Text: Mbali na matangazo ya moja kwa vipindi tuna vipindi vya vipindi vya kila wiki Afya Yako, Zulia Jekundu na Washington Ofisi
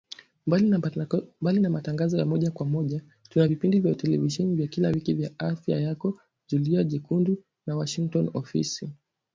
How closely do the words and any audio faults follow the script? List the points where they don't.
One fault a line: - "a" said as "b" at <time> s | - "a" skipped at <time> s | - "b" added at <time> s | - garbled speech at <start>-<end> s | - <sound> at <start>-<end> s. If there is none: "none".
- "vipindi" said as "moja" at 2.6 s
- "vipindi" said as "televisheni" at 3.9 s
- "vya" added at 5.1 s